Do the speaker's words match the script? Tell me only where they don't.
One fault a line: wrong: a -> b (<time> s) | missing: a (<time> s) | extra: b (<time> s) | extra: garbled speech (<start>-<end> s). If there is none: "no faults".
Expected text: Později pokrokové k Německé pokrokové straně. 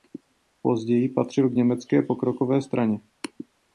wrong: pokrokové -> patřil (1.1 s)